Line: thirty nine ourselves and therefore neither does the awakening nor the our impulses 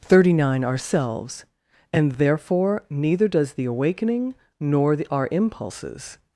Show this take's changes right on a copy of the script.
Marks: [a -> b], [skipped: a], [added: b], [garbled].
thirty nine ourselves and therefore neither does the awakening nor the our impulses